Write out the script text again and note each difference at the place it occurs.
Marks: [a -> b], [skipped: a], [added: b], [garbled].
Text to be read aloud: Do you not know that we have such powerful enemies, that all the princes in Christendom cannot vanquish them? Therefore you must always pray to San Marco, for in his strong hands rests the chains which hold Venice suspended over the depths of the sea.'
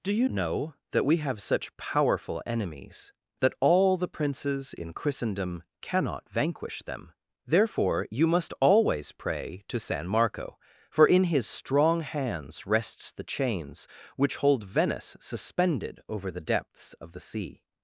Do you [skipped: not] know that we have such powerful enemies, that all the princes in Christendom cannot vanquish them? Therefore you must always pray to San Marco, for in his strong hands rests the chains which hold Venice suspended over the depths of the sea.'